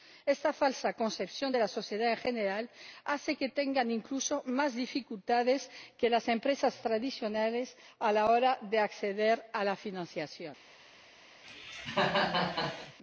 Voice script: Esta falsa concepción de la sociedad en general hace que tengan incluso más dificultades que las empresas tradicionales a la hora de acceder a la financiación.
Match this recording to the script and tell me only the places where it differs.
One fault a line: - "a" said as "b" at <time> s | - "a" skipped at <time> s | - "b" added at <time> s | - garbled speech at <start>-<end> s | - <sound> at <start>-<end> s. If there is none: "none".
- cough at 11.4-13.0 s